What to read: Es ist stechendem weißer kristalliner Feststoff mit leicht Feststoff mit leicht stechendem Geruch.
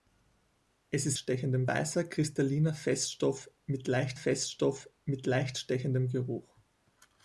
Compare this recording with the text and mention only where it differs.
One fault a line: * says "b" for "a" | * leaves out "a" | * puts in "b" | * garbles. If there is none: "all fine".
all fine